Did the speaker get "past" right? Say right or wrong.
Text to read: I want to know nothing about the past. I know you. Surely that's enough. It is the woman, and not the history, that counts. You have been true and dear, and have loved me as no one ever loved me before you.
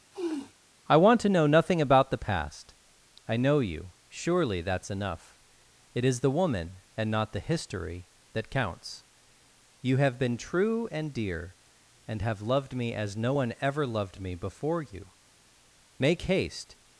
right